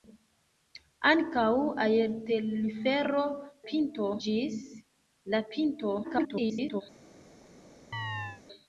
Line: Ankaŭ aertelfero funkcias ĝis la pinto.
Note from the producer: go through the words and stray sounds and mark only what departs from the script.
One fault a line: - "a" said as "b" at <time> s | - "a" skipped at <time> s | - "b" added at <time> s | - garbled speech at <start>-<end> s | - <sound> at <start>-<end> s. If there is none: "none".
- "funkcias" said as "pinto" at 3.7 s
- garbled speech at 6.0-6.8 s
- chirp at 7.9-8.4 s